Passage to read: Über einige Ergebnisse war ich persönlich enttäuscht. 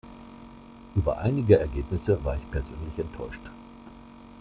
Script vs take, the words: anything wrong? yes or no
no